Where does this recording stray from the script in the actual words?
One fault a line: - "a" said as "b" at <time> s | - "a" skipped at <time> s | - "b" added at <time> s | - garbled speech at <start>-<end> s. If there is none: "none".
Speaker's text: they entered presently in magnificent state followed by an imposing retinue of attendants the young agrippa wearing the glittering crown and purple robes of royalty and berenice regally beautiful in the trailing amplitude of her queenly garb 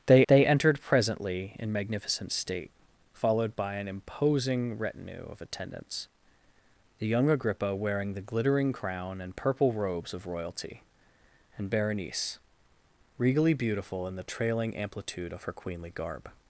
- "they" added at 0.3 s